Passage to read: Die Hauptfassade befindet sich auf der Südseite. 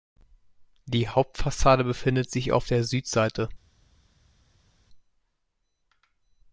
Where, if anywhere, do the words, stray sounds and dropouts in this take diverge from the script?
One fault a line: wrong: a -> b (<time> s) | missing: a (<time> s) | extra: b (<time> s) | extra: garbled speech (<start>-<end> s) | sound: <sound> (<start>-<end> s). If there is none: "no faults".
no faults